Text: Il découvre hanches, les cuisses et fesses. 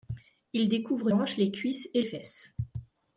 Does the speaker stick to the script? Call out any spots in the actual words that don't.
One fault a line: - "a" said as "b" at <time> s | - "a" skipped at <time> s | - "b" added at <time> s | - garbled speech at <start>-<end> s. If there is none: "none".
none